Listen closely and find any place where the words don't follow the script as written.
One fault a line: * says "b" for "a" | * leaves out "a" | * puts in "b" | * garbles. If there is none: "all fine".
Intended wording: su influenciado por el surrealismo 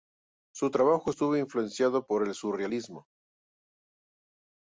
* puts in "trabajo estuvo"